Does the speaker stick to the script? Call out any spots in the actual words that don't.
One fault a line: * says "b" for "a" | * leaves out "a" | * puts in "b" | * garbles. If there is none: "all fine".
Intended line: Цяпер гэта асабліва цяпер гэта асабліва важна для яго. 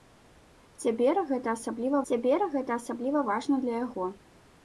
all fine